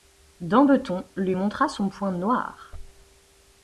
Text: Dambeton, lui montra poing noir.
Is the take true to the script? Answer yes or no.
no